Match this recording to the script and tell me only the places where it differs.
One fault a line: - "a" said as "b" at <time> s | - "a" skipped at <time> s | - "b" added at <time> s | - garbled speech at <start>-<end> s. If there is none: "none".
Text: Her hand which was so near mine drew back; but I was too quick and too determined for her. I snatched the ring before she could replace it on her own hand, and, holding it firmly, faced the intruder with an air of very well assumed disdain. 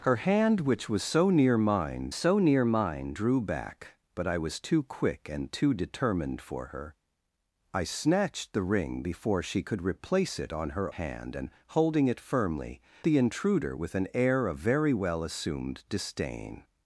- "so near mine" added at 2.1 s
- "own" skipped at 10.9 s
- "faced" skipped at 12.8 s